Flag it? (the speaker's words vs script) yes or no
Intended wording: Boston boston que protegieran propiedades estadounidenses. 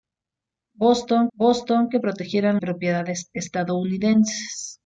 no